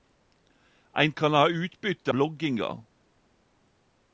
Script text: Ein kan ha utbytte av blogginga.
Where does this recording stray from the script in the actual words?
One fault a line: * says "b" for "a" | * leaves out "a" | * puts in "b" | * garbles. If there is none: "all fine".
* leaves out "av"